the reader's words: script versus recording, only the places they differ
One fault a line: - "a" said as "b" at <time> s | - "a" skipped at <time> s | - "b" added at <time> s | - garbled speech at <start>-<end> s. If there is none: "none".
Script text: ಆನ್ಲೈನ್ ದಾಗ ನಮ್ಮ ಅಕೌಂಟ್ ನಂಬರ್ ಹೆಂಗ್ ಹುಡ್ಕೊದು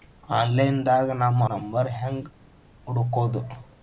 - "ಅಕೌಂಟ್" skipped at 1.5 s